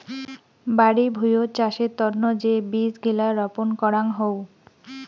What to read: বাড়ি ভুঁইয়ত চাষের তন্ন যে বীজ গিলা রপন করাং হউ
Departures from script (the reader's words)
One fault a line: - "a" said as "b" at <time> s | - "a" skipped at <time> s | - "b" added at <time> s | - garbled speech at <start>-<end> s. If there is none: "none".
none